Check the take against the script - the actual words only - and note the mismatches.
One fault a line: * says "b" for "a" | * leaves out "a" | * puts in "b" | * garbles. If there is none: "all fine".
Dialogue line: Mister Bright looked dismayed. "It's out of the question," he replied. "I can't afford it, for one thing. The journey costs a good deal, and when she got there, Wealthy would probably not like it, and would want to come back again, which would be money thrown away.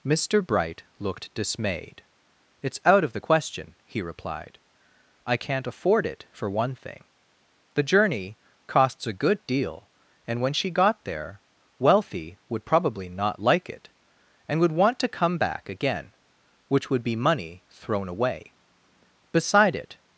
* puts in "Beside it"